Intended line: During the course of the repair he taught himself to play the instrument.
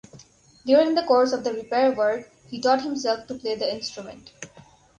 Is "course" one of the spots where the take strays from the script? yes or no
no